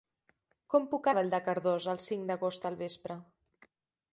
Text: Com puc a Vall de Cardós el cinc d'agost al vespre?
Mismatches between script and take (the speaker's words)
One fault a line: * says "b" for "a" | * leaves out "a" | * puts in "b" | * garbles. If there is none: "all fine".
all fine